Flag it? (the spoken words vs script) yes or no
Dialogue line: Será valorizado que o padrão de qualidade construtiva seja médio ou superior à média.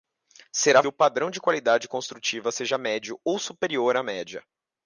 yes